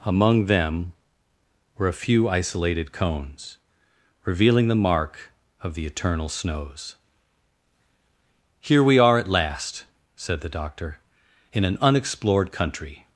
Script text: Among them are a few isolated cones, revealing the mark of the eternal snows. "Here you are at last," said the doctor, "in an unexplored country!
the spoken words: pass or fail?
fail